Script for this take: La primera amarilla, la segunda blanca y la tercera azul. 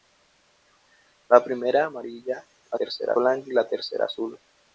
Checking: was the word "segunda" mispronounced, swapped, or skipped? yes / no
yes